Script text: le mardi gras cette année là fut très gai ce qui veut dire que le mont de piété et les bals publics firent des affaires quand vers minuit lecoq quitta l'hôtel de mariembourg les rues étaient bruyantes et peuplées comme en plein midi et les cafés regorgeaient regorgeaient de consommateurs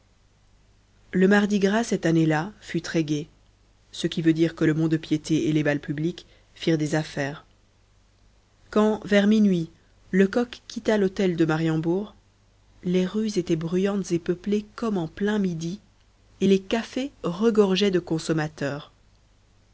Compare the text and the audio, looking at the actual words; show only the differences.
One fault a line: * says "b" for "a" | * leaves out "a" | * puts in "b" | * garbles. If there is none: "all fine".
* leaves out "regorgeaient"